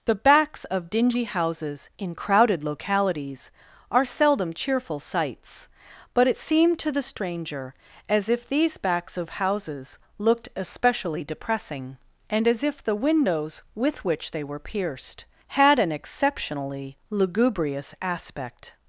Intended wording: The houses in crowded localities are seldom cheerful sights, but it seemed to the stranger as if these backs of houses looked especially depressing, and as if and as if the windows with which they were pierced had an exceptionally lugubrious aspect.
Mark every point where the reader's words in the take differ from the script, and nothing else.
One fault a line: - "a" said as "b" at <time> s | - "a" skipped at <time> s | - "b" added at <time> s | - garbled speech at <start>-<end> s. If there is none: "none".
- "backs of dingy" added at 0.1 s
- "and as if" skipped at 12.8 s